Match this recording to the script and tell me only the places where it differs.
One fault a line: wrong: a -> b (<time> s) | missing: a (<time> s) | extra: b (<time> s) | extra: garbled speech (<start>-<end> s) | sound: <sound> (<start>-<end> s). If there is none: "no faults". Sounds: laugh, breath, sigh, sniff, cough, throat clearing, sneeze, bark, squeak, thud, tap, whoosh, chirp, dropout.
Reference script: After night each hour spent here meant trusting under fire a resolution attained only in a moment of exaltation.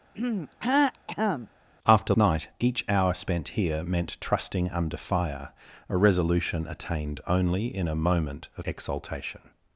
sound: throat clearing (0.1-1.5 s)